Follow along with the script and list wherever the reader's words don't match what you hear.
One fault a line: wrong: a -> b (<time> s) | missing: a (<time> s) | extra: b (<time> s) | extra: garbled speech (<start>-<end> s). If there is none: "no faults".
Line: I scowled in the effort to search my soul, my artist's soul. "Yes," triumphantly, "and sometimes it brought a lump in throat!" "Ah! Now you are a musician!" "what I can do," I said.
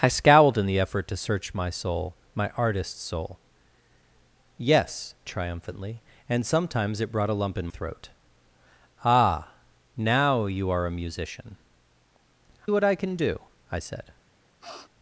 no faults